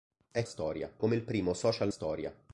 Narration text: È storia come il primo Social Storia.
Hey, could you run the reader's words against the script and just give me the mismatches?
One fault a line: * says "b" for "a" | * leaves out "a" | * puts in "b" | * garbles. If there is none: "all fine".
all fine